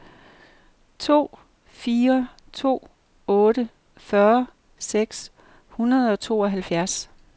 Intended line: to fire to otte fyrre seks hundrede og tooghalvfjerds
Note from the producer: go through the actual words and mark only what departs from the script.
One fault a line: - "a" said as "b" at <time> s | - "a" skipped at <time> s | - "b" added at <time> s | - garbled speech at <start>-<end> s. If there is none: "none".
none